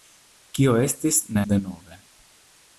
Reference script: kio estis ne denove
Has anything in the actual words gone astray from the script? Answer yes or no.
no